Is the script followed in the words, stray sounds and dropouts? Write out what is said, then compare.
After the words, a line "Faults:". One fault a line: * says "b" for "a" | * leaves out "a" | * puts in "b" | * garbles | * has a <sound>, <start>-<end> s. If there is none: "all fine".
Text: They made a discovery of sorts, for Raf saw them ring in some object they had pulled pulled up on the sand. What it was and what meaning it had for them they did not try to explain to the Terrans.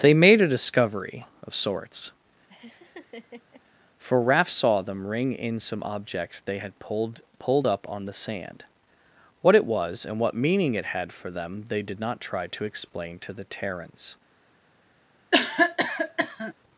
They made a discovery of sorts, for Raf saw them ring in some object they had pulled pulled up on the sand. What it was and what meaning it had for them they did not try to explain to the Terrans.
Faults:
* has a laugh, 2.5-3.6 s
* has a cough, 15.3-16.5 s